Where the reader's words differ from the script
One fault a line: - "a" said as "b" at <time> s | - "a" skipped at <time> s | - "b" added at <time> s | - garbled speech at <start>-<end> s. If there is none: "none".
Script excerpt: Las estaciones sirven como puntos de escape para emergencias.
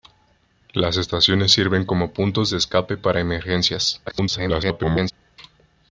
- garbled speech at 4.1-5.1 s